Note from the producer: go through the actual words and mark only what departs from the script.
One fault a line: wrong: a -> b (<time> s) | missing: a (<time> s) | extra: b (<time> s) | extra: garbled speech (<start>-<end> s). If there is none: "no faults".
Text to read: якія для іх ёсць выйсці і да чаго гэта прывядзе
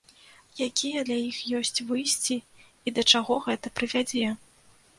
no faults